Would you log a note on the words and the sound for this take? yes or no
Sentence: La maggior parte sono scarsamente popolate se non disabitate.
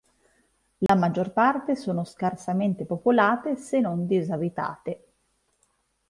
yes